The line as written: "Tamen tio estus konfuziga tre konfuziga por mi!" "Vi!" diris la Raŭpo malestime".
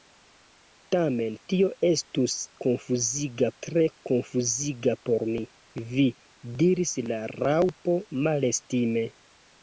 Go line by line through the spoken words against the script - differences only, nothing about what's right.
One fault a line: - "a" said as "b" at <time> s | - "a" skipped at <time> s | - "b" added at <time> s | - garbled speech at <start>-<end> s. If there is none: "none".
none